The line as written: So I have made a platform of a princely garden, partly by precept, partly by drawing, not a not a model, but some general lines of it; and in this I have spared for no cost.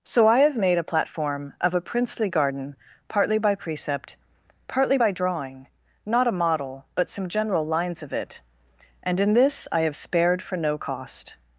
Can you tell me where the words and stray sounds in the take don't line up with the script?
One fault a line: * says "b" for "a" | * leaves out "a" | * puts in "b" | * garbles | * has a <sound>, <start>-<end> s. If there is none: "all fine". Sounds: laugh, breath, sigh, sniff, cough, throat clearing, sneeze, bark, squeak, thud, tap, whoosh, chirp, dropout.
* leaves out "not a"